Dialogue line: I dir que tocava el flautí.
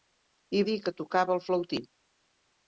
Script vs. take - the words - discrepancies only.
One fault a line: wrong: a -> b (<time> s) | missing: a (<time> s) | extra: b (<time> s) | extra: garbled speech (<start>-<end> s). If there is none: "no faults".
no faults